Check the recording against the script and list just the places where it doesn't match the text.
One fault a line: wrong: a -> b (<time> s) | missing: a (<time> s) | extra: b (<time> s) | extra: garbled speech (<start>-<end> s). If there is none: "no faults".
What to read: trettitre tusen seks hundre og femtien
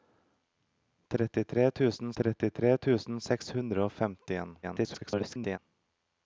extra: trettitre tusen (2.2 s)
extra: garbled speech (4.6-5.6 s)